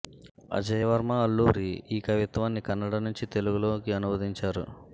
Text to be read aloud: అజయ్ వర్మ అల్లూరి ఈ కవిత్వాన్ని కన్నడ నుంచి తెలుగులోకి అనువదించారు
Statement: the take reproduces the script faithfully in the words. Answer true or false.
true